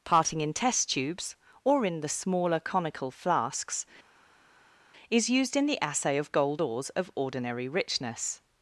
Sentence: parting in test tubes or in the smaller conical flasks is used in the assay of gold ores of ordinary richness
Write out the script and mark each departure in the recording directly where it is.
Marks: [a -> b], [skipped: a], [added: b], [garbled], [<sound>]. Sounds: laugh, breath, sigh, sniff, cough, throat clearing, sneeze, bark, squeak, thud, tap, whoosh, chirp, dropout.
parting in test tubes or in the smaller conical flasks is used in the assay of gold ores of ordinary richness